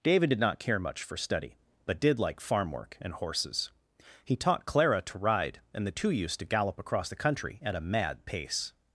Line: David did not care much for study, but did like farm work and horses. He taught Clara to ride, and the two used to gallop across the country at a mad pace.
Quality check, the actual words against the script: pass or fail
pass